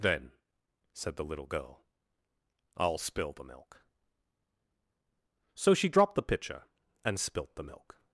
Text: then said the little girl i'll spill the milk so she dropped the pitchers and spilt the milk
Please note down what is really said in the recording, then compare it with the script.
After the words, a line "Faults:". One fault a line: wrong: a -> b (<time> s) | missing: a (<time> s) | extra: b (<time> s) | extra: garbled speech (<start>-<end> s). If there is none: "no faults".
then said the little girl i'll spill the milk so she dropped the pitcher and spilt the milk
Faults:
wrong: pitchers -> pitcher (6.2 s)